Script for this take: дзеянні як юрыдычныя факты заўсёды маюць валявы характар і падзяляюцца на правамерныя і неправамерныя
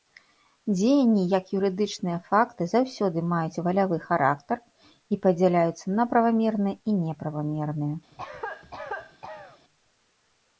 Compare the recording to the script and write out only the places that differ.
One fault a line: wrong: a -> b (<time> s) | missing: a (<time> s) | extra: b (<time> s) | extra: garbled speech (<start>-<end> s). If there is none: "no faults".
no faults